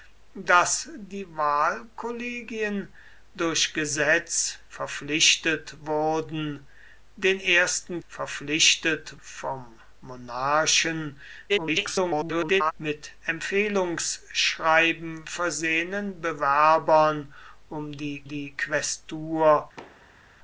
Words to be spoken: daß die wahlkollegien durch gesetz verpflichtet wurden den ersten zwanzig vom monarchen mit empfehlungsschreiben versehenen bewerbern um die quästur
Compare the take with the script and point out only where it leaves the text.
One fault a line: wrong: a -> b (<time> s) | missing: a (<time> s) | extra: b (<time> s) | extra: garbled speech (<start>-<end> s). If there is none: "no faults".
wrong: zwanzig -> verpflichtet (8.1 s)
extra: garbled speech (11.5-12.7 s)
extra: die (18.2 s)